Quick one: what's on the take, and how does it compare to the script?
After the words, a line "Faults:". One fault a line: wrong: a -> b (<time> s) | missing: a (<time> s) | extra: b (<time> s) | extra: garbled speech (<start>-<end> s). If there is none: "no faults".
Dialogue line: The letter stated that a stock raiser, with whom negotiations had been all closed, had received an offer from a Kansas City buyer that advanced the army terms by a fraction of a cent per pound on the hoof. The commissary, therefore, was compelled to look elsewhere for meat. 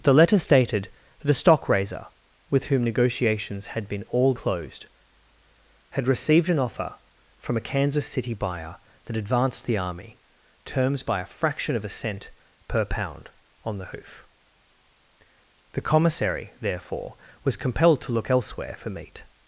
The letter stated that a stock raiser, with whom negotiations had been all closed, had received an offer from a Kansas City buyer that advanced the army terms by a fraction of a cent per pound on the hoof. The commissary, therefore, was compelled to look elsewhere for meat.
Faults:
no faults